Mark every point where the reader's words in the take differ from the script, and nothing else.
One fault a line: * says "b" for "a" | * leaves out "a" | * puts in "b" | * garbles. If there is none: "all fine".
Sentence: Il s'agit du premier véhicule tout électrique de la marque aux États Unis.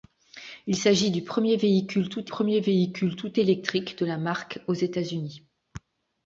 * puts in "premier véhicule tout"